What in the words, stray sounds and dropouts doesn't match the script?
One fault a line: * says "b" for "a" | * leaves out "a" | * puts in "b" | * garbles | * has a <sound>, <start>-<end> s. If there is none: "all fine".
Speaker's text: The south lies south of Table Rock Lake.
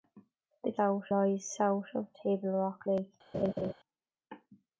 * has a laugh, 3.3-3.7 s